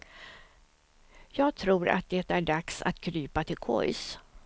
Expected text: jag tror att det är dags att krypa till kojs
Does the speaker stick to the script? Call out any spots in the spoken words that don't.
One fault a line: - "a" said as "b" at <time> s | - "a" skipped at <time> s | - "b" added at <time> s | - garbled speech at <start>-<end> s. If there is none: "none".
none